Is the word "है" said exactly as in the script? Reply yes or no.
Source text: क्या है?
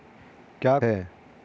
yes